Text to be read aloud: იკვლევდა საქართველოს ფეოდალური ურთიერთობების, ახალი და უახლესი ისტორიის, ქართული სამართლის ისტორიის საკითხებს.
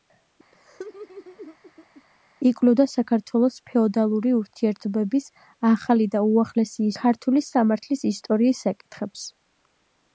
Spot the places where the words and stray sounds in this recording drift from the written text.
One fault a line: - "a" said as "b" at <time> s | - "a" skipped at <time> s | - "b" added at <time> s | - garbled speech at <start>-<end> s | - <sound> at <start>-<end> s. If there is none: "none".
- laugh at 0.5-2.0 s
- "ისტორიის" skipped at 6.9 s